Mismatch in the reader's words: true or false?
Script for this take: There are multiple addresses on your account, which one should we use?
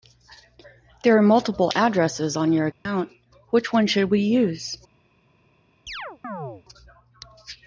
false